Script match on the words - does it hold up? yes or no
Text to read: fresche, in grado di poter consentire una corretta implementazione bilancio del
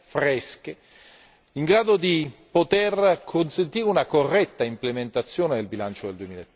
no